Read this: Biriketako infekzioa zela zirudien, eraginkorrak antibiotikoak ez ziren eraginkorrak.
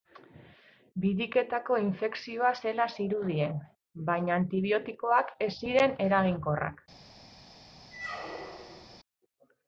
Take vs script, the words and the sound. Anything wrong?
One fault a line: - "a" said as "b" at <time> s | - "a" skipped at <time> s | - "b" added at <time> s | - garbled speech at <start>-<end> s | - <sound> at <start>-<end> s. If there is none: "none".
- "eraginkorrak" said as "baina" at 4.1 s
- squeak at 7.9-9.0 s